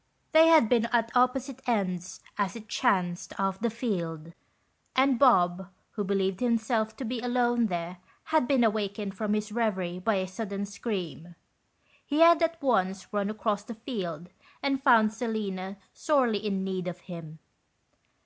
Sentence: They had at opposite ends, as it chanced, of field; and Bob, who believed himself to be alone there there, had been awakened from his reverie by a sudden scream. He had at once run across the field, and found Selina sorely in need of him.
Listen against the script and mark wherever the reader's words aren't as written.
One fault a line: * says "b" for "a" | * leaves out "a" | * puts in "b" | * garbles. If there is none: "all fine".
* puts in "been"
* puts in "the"
* leaves out "there"